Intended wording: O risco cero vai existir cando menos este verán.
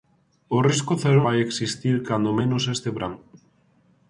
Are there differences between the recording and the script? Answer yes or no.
no